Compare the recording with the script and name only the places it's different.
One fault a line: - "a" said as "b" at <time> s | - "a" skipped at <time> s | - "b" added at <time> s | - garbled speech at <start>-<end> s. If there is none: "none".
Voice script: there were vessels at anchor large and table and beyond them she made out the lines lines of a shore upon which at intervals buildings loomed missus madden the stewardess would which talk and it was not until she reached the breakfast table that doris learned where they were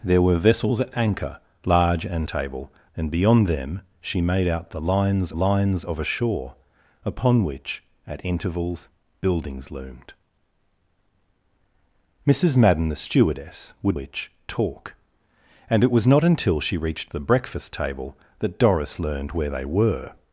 none